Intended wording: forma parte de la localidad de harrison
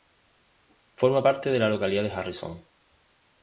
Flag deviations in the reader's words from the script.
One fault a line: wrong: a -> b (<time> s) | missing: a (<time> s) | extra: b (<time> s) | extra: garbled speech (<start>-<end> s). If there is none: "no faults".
no faults